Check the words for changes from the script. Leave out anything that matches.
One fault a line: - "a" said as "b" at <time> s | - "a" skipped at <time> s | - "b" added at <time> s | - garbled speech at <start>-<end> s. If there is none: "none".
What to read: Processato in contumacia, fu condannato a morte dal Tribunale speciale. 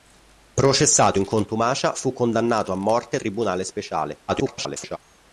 - "dal" skipped at 3.2 s
- garbled speech at 4.3-5.0 s